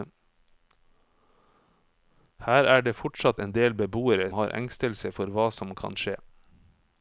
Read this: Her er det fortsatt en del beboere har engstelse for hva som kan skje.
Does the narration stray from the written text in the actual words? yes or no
no